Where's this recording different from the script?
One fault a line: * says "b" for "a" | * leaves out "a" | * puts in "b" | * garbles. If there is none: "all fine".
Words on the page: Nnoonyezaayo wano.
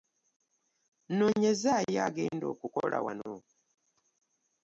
* puts in "agenda okukola"